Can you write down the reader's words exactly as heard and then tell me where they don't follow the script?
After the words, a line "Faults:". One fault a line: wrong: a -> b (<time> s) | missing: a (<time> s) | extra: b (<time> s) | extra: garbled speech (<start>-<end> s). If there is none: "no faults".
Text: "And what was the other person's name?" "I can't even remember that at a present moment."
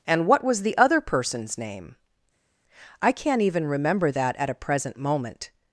"And what was the other person's name?" "I can't even remember that at a present moment."
Faults:
no faults